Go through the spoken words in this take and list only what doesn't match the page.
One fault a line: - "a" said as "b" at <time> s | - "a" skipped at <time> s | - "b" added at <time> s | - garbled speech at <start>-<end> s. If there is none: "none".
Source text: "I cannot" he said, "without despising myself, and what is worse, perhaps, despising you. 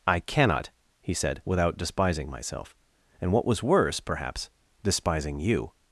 - "is" said as "was" at 3.5 s